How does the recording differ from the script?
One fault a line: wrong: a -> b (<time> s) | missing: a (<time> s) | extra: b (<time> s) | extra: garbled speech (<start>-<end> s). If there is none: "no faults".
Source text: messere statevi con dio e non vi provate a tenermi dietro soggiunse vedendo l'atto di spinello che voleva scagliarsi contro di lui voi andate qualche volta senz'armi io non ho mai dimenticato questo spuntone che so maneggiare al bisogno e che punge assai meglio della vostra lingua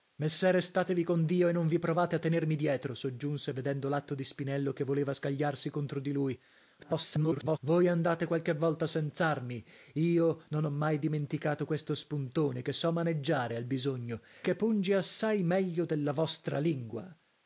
extra: garbled speech (6.8-7.6 s)
missing: e (14.2 s)